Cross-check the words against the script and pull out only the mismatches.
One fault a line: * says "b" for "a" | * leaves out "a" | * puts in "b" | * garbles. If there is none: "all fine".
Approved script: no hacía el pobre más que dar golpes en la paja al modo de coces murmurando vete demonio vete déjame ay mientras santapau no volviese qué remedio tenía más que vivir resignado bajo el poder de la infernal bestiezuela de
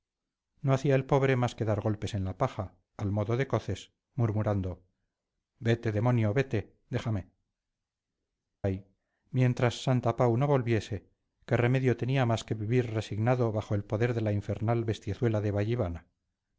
all fine